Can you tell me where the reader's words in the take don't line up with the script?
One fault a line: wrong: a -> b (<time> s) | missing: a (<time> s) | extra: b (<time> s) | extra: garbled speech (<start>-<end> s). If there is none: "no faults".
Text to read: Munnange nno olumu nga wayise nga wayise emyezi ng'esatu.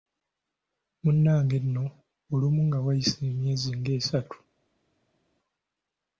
missing: nga wayise (3.2 s)